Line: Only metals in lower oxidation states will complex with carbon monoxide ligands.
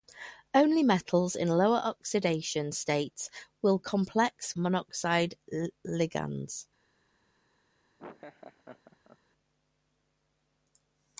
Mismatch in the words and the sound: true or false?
true